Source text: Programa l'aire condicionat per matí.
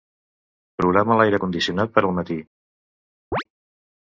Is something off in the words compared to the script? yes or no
yes